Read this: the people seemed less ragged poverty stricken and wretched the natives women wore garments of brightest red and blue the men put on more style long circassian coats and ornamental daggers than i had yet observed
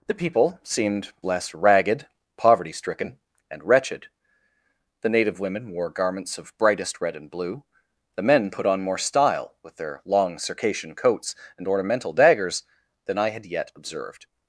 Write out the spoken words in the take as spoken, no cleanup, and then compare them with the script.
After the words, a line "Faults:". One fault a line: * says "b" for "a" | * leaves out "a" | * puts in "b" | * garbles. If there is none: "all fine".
the people seemed less ragged poverty stricken and wretched the native women wore garments of brightest red and blue the men put on more style with their long circassian coats and ornamental daggers than i had yet observed
Faults:
* says "native" for "natives"
* puts in "with their"